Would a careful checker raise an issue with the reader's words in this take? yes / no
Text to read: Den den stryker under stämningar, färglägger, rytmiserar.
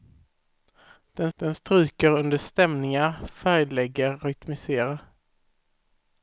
no